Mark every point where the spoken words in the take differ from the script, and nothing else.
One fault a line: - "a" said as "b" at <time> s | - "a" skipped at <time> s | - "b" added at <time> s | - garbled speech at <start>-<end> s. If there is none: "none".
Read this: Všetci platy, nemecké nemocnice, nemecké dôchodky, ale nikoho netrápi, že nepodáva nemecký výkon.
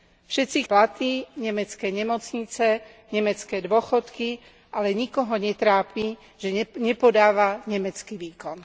none